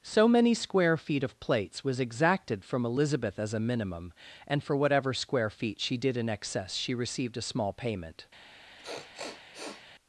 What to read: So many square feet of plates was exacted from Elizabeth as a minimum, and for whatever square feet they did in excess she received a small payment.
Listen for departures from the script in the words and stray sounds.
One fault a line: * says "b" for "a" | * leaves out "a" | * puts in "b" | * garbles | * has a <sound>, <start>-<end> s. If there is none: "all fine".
* says "she" for "they"
* has a sniff, 8.8-9.9 s